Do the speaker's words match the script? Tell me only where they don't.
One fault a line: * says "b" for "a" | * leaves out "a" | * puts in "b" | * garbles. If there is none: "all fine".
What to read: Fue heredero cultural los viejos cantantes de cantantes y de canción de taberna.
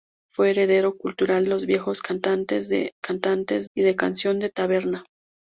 all fine